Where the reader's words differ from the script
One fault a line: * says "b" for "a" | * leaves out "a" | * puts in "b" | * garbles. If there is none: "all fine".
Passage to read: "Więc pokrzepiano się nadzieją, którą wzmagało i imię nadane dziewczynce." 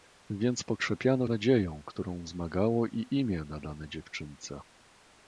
* leaves out "się"